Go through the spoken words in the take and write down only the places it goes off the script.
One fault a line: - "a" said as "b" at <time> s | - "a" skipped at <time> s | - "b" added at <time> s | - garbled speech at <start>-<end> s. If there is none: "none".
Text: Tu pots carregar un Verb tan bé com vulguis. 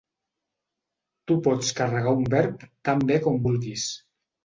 none